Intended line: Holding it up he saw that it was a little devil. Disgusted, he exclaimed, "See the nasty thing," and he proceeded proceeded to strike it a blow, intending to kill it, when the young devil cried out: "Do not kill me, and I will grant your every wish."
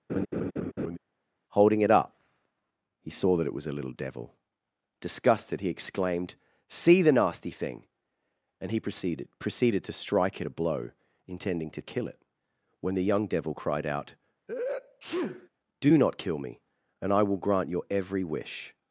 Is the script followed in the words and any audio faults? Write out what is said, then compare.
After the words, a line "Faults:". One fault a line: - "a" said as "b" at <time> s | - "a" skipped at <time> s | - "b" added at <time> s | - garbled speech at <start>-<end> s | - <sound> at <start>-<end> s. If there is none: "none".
Holding it up he saw that it was a little devil. Disgusted, he exclaimed, "See the nasty thing," and he proceeded proceeded to strike it a blow, intending to kill it, when the young devil cried out: "Do not kill me, and I will grant your every wish."
Faults:
- laugh at 0.1-1.0 s
- sneeze at 14.5-15.5 s